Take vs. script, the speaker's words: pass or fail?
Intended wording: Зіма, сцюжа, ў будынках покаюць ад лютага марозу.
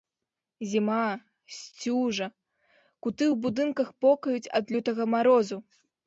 fail